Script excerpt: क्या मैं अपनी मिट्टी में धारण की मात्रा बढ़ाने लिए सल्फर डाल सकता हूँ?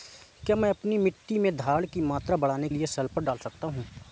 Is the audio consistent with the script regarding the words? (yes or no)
yes